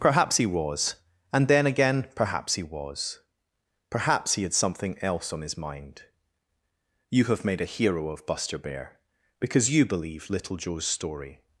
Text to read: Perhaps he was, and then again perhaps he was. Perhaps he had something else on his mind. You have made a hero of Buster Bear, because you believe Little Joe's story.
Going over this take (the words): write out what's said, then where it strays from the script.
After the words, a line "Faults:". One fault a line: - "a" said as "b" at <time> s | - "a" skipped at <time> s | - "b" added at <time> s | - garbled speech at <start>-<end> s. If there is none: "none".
Perhaps he was, and then again perhaps he was. Perhaps he had something else on his mind. You have made a hero of Buster Bear, because you believe Little Joe's story.
Faults:
none